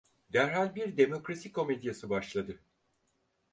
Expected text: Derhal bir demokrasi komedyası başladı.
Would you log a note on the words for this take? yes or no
no